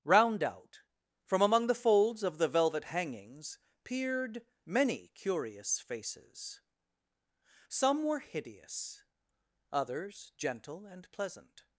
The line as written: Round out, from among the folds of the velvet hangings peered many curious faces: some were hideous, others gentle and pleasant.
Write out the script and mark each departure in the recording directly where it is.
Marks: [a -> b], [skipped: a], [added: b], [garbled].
Round out, from among the folds of the velvet hangings peered many curious faces: some were hideous, others gentle and pleasant.